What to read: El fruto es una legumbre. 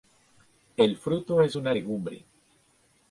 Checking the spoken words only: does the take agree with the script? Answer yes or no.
yes